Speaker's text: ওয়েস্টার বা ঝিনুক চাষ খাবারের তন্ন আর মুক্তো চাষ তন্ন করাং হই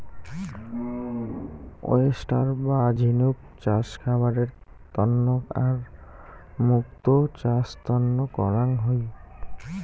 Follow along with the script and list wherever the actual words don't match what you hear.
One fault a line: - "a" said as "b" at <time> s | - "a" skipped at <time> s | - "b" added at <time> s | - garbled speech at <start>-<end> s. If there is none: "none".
none